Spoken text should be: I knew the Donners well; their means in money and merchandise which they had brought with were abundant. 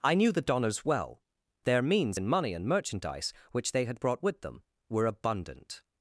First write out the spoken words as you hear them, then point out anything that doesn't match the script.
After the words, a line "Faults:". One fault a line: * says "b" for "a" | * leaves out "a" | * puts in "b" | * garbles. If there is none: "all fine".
I knew the Donners well; their means in money and merchandise which they had brought with them were abundant.
Faults:
* puts in "them"